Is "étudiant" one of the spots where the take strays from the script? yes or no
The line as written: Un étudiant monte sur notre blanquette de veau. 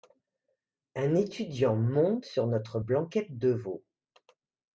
no